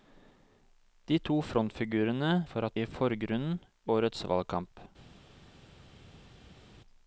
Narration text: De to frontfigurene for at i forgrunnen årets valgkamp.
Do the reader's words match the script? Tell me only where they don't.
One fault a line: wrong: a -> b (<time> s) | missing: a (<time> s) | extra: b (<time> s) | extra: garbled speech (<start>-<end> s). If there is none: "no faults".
no faults